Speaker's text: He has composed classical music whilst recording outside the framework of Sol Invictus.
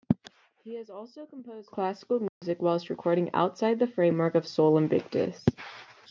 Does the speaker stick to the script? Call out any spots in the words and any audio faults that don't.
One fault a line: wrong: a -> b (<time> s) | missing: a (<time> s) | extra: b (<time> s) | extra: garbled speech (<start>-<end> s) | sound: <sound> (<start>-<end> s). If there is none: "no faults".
extra: also (0.9 s)
sound: dropout (2.3-2.4 s)